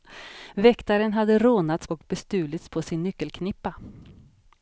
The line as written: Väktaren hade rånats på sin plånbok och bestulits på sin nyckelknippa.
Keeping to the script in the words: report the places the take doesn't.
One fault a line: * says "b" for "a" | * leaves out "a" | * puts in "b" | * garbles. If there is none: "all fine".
* leaves out "på sin plånbok"